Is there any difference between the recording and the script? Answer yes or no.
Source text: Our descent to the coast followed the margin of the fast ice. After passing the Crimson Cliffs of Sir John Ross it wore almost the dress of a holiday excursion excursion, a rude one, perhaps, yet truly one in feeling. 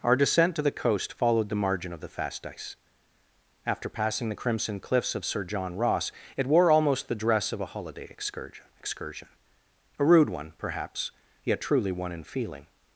no